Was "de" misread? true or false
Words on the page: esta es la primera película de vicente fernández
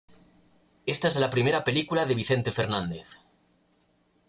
false